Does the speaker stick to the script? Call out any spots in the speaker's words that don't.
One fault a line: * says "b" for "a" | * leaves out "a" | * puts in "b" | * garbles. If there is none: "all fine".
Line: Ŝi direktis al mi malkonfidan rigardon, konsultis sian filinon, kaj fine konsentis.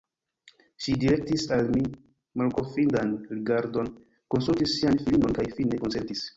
all fine